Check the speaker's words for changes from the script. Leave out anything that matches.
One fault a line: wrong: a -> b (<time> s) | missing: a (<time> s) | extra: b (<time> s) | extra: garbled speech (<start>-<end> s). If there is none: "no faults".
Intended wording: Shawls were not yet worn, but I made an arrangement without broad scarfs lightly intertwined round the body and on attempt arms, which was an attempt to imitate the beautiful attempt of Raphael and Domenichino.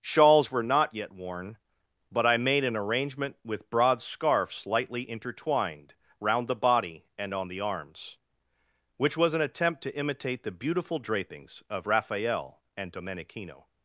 wrong: without -> with (3.5 s)
wrong: attempt -> the (7.5 s)
wrong: attempt -> drapings (11.0 s)